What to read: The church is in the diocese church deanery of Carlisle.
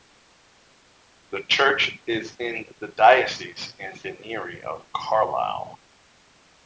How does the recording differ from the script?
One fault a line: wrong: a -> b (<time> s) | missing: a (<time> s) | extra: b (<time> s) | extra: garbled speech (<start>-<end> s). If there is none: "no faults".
wrong: church -> and (3.8 s)